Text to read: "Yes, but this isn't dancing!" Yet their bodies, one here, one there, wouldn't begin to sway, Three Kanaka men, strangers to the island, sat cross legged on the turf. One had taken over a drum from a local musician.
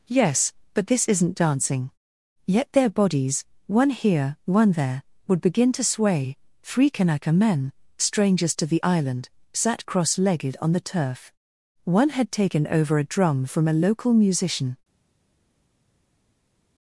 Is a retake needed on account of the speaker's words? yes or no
yes